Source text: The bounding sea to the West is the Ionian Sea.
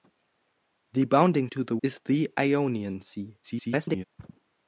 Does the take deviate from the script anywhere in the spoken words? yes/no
yes